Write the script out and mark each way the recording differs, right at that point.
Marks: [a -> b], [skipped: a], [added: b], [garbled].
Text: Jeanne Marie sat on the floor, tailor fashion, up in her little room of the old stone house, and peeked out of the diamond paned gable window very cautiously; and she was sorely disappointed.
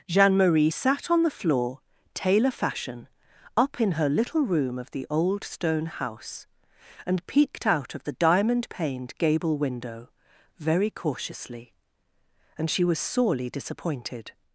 Jeanne Marie sat on the floor, tailor fashion, up in her little room of the old stone house, and peeked out of the diamond paned gable window very cautiously; and she was sorely disappointed.